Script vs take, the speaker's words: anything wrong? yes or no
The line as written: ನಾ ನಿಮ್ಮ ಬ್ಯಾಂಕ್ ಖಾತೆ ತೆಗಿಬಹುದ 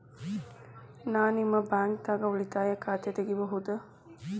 yes